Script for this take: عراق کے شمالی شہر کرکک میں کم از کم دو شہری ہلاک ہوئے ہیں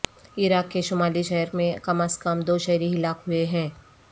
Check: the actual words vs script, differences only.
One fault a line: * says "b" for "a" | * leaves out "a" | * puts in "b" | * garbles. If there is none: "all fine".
* leaves out "کرکک"